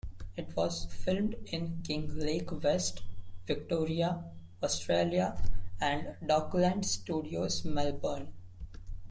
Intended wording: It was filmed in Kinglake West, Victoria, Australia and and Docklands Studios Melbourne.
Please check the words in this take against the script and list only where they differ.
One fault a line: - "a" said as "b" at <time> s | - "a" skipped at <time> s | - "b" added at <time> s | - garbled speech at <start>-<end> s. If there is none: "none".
- "and" skipped at 6.2 s